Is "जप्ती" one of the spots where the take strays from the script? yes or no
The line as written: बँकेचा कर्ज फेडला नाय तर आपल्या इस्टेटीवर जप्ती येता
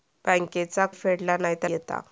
yes